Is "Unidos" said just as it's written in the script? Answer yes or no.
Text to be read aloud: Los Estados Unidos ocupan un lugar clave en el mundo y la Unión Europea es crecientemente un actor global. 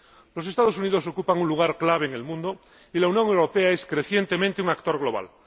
yes